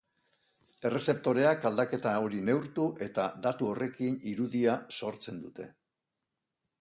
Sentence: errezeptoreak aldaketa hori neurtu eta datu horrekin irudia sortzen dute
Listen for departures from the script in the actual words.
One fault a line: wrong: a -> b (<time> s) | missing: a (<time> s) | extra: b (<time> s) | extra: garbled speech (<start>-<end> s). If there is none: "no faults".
no faults